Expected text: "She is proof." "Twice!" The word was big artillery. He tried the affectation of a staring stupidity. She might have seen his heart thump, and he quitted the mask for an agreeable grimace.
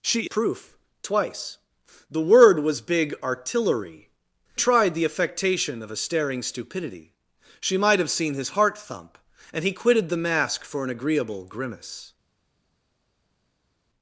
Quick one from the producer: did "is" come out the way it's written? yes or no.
no